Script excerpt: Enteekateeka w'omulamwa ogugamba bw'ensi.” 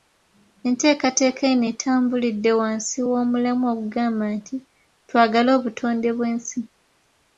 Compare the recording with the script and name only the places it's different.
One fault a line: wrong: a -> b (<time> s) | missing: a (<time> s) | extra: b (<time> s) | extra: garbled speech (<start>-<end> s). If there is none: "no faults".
extra: eno etambulidde wansi (1.5 s)
extra: nti Twagale obutonde (4.4 s)